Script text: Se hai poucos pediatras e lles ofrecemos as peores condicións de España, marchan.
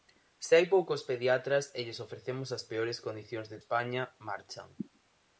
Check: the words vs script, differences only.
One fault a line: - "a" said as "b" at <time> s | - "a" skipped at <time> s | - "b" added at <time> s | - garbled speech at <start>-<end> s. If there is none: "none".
none